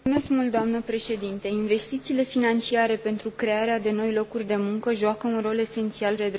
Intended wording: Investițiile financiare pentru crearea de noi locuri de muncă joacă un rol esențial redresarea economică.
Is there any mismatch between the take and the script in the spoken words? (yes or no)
no